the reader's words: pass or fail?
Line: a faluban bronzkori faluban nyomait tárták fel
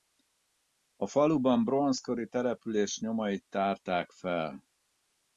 fail